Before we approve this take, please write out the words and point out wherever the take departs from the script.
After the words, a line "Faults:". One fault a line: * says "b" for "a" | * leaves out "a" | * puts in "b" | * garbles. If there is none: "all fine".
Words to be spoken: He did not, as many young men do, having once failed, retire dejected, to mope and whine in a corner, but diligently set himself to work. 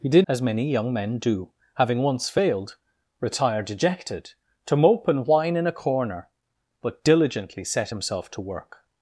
He did as many young men do, having once failed, retire dejected, to mope and whine in a corner, but diligently set himself to work.
Faults:
* leaves out "not"